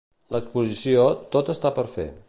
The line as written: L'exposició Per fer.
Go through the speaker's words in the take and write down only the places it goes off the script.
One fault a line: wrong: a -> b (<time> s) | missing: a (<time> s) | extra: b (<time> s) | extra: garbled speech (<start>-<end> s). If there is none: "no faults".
extra: Tot està (1.4 s)